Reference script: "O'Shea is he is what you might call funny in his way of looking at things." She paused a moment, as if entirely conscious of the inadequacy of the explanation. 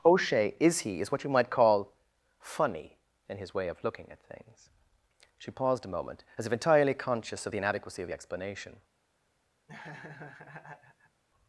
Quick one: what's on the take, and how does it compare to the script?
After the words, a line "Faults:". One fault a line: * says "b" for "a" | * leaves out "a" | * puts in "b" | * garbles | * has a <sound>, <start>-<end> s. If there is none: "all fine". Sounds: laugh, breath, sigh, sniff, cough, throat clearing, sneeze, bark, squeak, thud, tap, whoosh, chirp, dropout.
"O'Shea is he is what you might call funny in his way of looking at things." She paused a moment, as if entirely conscious of the inadequacy of the explanation.
Faults:
* has a laugh, 9.7-11.2 s